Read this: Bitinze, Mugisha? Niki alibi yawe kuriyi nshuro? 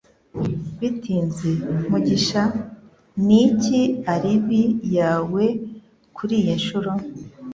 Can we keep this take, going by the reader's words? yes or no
yes